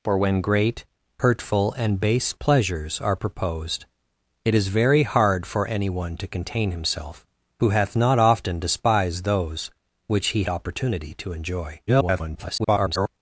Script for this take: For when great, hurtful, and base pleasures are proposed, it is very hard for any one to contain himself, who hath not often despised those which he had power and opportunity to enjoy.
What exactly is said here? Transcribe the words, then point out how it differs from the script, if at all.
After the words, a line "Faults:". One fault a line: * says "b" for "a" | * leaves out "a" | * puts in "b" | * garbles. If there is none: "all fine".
For when great, hurtful, and base pleasures are proposed, it is very hard for any one to contain himself, who hath not often despised those which he opportunity to enjoy. [garbled]
Faults:
* leaves out "had power and"
* garbles